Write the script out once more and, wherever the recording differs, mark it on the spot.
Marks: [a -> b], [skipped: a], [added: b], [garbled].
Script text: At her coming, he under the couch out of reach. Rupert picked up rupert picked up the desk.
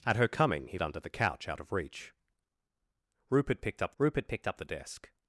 At her coming, he under the couch out of reach. Rupert picked up rupert picked up the desk.